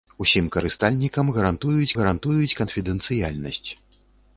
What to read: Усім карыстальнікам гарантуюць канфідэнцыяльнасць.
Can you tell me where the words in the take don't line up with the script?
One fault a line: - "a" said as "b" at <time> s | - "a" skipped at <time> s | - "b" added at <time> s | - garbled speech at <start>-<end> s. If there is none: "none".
- "гарантуюць" added at 2.0 s